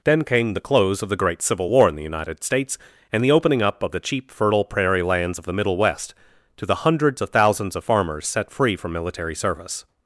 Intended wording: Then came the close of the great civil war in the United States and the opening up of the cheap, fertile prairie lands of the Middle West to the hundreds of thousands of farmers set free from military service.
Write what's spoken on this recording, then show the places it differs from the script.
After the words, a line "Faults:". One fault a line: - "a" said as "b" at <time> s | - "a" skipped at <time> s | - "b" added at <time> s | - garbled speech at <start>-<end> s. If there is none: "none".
Then came the close of the great civil war in the United States and the opening up of the cheap, fertile prairie lands of the Middle West to the hundreds of thousands of farmers set free from military service.
Faults:
none